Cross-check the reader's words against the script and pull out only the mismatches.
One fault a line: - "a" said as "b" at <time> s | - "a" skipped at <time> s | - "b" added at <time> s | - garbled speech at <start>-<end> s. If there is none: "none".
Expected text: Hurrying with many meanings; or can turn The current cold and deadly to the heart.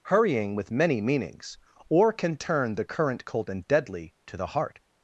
none